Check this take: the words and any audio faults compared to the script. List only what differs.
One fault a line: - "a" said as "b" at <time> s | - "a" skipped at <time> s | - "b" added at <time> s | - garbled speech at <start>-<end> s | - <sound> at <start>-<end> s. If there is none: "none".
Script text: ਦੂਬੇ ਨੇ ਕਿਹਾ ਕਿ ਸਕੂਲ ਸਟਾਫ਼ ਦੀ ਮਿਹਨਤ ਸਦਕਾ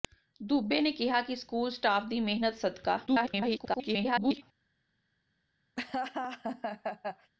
- garbled speech at 3.1-4.4 s
- laugh at 5.8-7.3 s